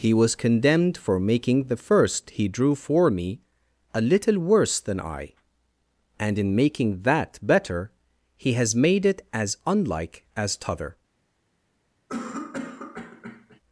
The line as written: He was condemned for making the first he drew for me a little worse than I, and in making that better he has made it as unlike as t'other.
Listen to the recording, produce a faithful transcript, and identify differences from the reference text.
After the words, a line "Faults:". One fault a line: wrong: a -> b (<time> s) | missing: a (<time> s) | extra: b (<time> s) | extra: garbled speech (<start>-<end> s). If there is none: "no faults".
He was condemned for making the first he drew for me a little worse than I, and in making that better he has made it as unlike as t'other.
Faults:
no faults